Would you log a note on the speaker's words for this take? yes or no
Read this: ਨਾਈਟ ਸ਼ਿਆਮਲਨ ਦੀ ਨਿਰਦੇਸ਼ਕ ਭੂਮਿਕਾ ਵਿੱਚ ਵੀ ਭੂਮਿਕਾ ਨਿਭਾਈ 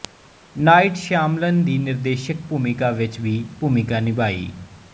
no